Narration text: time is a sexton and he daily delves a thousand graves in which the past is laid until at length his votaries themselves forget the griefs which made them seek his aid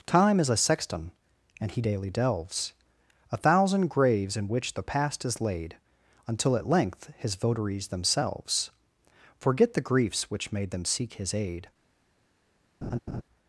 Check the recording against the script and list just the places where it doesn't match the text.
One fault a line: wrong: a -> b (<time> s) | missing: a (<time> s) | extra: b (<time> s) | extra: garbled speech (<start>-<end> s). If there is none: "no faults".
no faults